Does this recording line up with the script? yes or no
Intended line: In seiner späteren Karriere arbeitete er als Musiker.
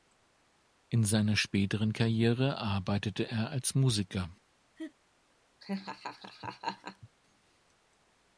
yes